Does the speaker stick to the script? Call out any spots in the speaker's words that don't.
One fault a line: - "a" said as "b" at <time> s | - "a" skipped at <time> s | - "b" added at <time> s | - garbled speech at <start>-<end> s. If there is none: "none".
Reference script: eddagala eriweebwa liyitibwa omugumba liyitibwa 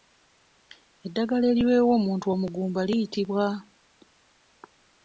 - "liyitibwa" said as "omuntu" at 2.0 s